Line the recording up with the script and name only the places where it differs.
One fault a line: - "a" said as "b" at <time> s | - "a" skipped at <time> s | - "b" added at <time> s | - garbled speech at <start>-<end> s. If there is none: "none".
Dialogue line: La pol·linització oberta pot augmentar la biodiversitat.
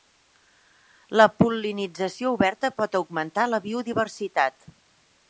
none